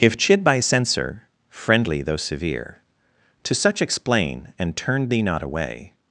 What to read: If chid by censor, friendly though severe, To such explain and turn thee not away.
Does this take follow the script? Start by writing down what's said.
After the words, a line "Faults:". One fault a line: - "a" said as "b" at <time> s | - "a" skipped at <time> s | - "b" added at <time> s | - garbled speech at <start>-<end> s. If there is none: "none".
If chid by censor, friendly though severe, To such explain and turn thee not away.
Faults:
none